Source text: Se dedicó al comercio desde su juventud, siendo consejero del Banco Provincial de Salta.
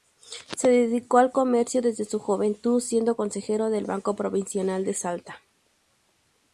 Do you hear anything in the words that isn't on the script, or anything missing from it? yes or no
no